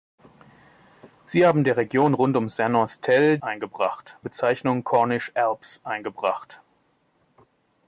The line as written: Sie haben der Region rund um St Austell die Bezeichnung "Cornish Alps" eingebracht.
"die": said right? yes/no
no